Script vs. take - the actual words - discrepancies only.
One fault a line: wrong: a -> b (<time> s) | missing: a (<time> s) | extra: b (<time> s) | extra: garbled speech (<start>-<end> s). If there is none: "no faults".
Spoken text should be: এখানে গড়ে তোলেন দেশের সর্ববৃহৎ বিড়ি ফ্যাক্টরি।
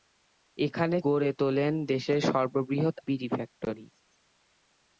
no faults